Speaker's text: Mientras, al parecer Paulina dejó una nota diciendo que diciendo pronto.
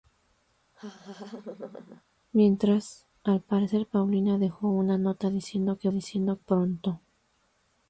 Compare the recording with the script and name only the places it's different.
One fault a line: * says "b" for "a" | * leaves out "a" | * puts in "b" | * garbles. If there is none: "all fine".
all fine